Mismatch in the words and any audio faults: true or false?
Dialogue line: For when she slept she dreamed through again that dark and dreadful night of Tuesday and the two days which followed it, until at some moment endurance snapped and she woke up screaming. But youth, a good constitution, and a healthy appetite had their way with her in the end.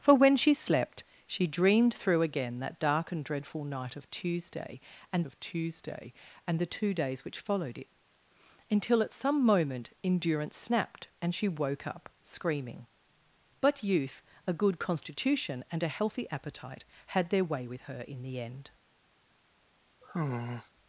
true